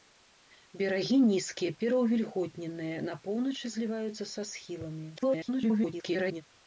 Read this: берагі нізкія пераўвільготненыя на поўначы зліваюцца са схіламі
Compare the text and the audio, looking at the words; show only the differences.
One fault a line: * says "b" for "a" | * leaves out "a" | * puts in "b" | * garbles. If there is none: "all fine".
* garbles